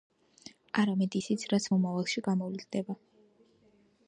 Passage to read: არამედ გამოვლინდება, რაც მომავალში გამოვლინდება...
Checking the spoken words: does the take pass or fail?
fail